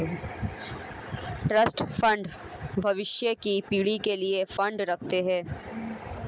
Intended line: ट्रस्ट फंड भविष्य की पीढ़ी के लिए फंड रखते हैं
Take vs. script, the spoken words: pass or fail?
pass